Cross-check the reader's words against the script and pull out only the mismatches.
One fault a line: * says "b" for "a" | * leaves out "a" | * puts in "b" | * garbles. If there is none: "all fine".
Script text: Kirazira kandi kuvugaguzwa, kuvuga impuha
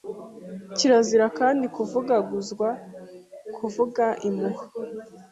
all fine